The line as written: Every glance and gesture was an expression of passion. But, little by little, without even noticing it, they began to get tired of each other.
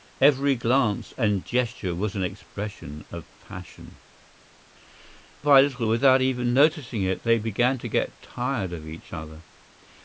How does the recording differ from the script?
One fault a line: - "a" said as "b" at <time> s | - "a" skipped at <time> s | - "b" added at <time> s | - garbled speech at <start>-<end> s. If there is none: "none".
- "But little" skipped at 4.0 s